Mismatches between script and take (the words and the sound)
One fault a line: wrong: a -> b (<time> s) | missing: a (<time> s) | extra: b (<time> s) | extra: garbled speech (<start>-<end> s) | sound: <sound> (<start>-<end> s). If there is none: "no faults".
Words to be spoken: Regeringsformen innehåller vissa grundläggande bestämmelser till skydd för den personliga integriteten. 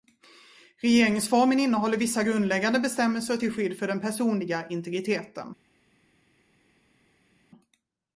no faults